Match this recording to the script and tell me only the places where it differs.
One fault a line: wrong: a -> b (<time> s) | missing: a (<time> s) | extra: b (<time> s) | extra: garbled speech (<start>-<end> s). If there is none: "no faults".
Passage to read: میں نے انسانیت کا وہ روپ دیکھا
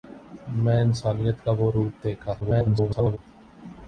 missing: نے (0.8 s)
extra: garbled speech (2.4-3.2 s)